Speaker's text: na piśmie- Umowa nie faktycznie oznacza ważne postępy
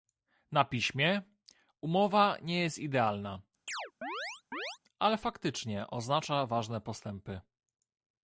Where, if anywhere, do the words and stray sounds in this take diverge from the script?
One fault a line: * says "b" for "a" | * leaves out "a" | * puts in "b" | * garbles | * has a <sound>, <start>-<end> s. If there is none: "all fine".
* puts in "jest idealna ale"
* has a chirp, 3.7-4.8 s